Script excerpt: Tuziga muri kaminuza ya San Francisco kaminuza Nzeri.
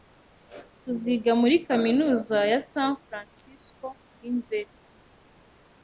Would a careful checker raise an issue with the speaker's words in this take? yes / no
yes